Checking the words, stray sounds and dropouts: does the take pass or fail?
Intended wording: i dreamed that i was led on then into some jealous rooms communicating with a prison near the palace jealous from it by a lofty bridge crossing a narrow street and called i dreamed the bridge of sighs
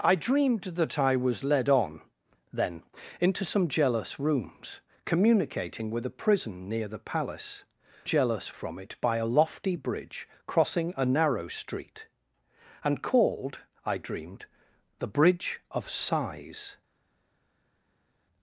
pass